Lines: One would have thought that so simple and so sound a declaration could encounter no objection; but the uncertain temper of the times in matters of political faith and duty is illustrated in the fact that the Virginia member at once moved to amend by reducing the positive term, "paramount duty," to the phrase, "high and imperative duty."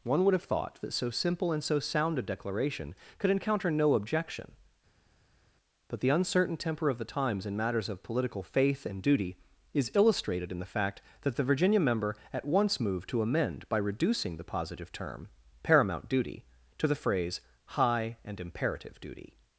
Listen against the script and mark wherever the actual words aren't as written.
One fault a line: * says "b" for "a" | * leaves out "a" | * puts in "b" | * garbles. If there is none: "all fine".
all fine